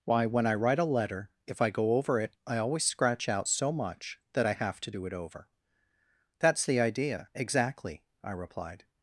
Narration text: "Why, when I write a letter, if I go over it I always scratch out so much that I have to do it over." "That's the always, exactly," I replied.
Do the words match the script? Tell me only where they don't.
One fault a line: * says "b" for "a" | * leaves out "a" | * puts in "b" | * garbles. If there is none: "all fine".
* says "idea" for "always"